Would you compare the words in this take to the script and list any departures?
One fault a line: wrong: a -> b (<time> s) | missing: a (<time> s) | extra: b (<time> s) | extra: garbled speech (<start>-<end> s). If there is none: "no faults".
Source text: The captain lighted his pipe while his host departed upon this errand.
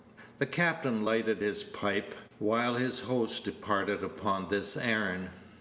no faults